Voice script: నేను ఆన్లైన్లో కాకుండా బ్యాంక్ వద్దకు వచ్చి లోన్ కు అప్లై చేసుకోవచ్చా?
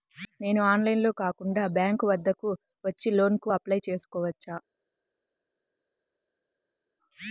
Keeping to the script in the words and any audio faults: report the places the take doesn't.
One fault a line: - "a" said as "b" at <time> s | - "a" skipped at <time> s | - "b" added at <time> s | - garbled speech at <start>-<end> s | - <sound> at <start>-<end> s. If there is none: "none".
none